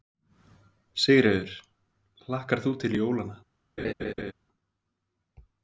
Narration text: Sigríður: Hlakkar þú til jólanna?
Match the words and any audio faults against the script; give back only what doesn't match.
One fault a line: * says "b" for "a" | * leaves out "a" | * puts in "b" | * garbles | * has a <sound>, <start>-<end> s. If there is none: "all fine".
* has a laugh, 3.8-4.3 s